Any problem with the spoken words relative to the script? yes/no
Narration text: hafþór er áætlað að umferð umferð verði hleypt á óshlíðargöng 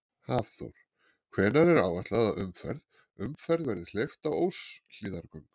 yes